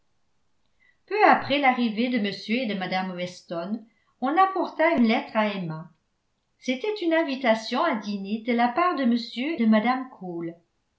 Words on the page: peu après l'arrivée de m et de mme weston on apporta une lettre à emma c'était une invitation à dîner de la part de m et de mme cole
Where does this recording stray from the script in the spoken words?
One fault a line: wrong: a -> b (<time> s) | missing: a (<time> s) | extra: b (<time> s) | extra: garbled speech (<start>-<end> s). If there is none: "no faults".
missing: et (9.2 s)